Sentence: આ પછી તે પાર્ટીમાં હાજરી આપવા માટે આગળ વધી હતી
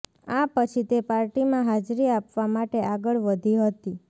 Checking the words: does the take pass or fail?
pass